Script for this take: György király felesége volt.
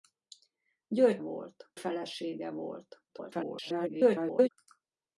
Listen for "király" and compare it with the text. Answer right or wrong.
wrong